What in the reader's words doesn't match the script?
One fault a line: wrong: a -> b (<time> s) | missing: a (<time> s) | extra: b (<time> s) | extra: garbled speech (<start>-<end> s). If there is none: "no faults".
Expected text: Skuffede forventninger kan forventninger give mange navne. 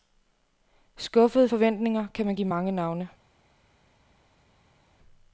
wrong: forventninger -> man (2.3 s)